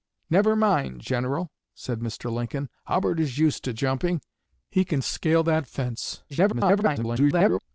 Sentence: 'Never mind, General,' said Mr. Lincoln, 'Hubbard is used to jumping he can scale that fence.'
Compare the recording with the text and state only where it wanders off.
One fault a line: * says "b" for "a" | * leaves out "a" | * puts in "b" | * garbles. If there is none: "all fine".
* garbles